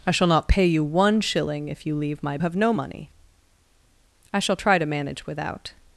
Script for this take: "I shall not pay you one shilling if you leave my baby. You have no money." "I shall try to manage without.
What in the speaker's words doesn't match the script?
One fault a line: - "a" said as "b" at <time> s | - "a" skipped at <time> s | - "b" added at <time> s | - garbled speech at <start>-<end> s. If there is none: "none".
- "baby You" skipped at 2.4 s